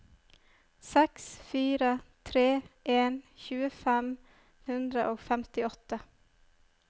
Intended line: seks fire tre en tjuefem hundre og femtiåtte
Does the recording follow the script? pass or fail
pass